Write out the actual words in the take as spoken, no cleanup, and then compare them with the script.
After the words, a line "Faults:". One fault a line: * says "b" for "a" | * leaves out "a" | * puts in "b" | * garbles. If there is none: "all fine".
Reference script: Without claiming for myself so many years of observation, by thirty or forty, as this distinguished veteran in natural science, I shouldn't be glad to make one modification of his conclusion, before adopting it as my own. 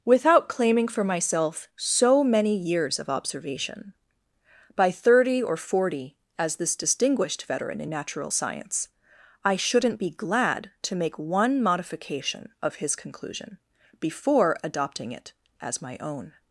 Without claiming for myself so many years of observation, by thirty or forty, as this distinguished veteran in natural science, I shouldn't be glad to make one modification of his conclusion, before adopting it as my own.
Faults:
all fine